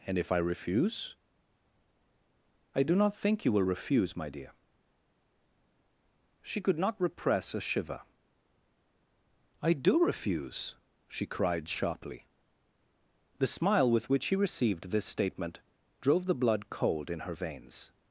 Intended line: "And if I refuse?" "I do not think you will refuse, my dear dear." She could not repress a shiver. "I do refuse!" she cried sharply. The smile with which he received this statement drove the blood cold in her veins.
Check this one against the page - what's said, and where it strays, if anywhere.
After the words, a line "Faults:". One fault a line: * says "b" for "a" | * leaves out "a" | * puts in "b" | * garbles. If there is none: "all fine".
"And if I refuse?" "I do not think you will refuse, my dear." She could not repress a shiver. "I do refuse!" she cried sharply. The smile with which he received this statement drove the blood cold in her veins.
Faults:
* leaves out "dear"